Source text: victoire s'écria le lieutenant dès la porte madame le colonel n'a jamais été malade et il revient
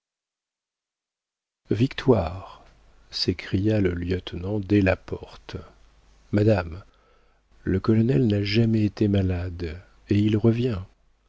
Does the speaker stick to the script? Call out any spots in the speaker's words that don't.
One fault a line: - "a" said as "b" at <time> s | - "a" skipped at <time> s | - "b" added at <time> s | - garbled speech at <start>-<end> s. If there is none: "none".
none